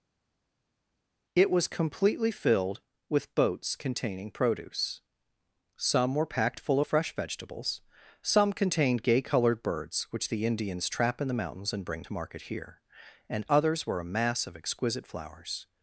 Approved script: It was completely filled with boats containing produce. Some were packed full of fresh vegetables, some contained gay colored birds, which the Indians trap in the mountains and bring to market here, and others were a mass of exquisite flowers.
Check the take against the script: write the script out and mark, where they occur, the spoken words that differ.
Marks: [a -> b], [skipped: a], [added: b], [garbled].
It was completely filled with boats containing produce. Some were packed full of fresh vegetables, some contained gay colored birds, which the Indians trap in the mountains and bring to market here, and others were a mass of exquisite flowers.